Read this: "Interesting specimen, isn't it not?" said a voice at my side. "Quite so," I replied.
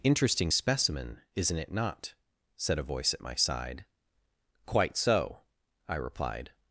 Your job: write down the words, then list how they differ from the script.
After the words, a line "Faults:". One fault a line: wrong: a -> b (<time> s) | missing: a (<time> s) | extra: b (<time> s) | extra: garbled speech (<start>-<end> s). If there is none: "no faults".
"Interesting specimen, isn't it not?" said a voice at my side. "Quite so," I replied.
Faults:
no faults